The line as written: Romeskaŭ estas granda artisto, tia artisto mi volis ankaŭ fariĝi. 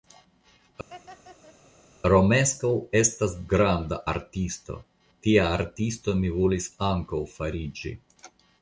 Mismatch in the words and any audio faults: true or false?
true